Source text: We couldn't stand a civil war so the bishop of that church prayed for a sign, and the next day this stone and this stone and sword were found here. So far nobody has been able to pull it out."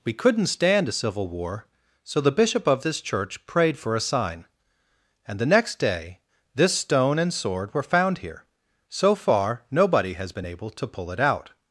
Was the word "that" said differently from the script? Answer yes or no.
yes